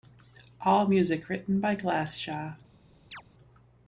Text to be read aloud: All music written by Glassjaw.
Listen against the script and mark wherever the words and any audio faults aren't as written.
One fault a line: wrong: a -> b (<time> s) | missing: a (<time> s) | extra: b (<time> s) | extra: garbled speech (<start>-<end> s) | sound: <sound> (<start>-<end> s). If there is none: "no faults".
sound: chirp (3.1-3.2 s)